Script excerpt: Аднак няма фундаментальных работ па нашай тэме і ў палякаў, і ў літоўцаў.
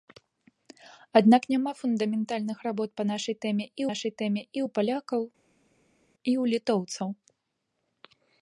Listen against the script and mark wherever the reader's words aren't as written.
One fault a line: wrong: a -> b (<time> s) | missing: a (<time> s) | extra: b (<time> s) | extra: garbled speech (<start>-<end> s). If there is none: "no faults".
extra: нашай тэме і (3.9 s)